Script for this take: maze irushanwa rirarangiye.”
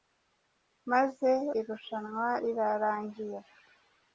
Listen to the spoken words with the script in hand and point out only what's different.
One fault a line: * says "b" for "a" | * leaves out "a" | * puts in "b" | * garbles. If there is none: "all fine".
all fine